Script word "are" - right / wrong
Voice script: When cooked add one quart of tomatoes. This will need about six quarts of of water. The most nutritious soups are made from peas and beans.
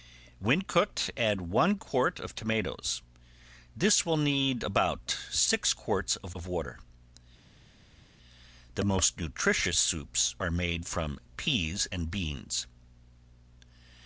right